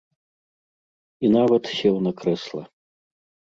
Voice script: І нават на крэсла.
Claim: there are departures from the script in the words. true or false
true